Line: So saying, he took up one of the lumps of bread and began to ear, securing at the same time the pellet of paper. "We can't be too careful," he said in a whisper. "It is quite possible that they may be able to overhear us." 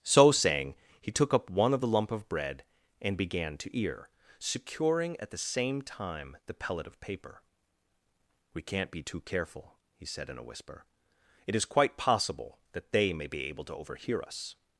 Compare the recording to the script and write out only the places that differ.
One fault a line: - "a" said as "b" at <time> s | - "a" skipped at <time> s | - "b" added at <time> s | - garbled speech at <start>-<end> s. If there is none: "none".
- "lumps" said as "lump" at 1.9 s